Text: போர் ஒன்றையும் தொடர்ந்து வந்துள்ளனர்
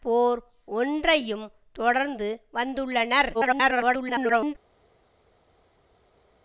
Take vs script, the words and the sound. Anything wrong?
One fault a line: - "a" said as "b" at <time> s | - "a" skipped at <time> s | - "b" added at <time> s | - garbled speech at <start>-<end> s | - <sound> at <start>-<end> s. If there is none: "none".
- garbled speech at 3.3-4.6 s